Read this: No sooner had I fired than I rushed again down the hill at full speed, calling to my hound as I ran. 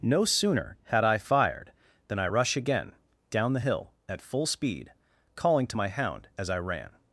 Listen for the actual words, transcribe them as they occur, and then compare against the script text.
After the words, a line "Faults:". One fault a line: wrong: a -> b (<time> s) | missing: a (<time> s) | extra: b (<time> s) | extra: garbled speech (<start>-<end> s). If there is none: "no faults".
No sooner had I fired than I rush again down the hill at full speed, calling to my hound as I ran.
Faults:
wrong: rushed -> rush (2.2 s)